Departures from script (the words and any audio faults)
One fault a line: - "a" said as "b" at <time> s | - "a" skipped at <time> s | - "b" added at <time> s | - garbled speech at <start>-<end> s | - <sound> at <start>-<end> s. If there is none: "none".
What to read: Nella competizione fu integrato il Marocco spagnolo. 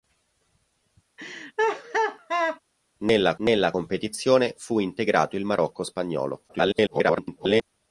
- laugh at 1.2-2.6 s
- "nella" added at 3.4 s
- garbled speech at 6.5-7.6 s